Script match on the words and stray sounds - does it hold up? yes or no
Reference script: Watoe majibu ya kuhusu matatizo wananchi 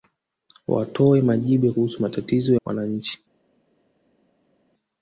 yes